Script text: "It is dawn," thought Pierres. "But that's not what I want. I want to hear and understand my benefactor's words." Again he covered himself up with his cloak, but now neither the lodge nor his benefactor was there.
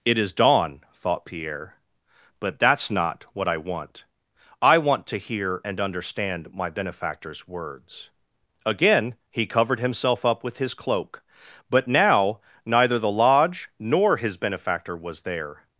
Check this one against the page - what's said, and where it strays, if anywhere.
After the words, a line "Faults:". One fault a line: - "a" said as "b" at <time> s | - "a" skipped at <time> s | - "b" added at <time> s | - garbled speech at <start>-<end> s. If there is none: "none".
"It is dawn," thought Pierre. "But that's not what I want. I want to hear and understand my benefactor's words." Again he covered himself up with his cloak, but now neither the lodge nor his benefactor was there.
Faults:
- "Pierres" said as "Pierre" at 1.2 s